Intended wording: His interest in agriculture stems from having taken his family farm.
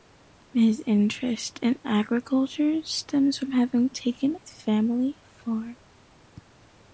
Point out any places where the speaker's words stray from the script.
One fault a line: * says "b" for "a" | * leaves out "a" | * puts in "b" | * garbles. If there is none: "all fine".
all fine